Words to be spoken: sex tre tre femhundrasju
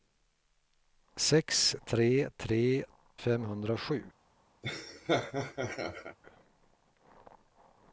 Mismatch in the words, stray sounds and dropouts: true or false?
true